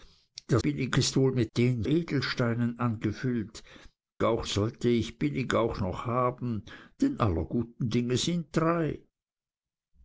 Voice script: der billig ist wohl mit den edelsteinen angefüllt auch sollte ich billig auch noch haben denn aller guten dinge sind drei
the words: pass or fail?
pass